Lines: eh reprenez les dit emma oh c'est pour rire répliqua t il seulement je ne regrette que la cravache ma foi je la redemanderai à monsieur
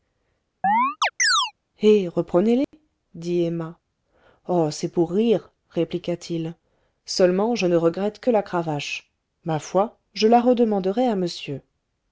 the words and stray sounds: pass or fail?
fail